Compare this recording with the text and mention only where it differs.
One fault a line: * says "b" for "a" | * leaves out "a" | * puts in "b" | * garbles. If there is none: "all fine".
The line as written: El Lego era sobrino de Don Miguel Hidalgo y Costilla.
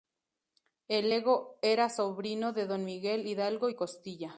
all fine